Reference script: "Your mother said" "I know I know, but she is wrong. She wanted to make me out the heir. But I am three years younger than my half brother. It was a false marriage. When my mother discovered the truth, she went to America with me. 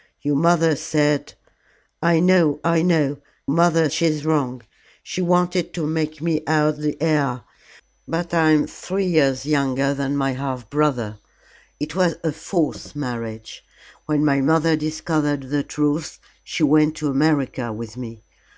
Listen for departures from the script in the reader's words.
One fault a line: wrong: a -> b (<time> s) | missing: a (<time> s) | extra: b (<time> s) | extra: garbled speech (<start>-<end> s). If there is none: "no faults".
wrong: but -> mother (3.5 s)